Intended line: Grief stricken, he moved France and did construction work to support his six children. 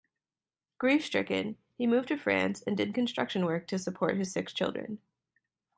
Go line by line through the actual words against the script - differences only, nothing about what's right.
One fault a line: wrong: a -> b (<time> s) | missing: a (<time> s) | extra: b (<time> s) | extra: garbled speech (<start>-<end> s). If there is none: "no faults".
extra: to (2.1 s)